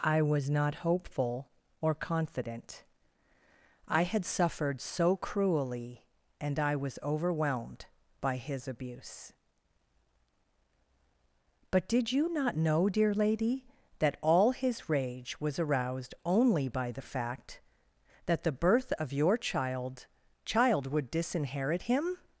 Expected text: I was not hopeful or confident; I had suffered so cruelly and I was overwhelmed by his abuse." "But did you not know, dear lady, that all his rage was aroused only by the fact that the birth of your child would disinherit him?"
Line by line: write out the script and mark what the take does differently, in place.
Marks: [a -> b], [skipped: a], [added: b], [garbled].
I was not hopeful or confident; I had suffered so cruelly and I was overwhelmed by his abuse." "But did you not know, dear lady, that all his rage was aroused only by the fact that the birth of your child [added: child] would disinherit him?"